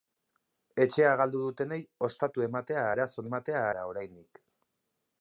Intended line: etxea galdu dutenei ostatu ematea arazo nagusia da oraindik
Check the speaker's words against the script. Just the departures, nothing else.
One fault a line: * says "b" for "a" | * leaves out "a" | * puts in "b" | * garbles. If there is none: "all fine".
* says "ematea" for "nagusia"